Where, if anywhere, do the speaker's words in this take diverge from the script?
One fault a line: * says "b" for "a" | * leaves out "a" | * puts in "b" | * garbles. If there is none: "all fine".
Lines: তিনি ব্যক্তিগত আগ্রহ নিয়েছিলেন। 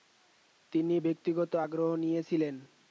all fine